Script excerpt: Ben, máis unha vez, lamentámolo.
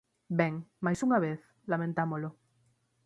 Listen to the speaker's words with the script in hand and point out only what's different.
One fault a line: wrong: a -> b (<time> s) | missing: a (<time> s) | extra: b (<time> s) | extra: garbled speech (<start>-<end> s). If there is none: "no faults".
no faults